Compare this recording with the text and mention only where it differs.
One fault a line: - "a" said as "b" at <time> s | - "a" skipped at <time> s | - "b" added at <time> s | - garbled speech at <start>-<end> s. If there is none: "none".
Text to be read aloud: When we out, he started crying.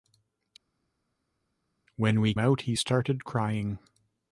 none